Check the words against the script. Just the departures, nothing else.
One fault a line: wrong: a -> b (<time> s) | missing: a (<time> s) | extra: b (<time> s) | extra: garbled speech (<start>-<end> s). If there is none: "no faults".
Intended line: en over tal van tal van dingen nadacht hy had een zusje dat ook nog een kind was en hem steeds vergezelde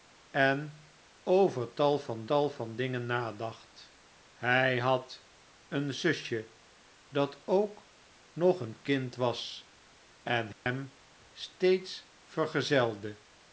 no faults